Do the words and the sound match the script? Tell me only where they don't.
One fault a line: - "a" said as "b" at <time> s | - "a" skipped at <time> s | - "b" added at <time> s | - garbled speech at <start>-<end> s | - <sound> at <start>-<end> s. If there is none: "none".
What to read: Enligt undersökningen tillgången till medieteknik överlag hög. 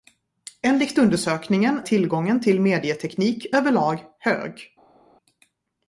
none